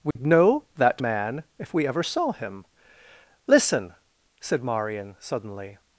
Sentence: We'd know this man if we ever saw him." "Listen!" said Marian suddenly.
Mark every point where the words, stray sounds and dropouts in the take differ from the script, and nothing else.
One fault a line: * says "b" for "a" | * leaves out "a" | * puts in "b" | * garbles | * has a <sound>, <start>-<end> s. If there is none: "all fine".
* has a dropout, 0.1-0.2 s
* says "that" for "this"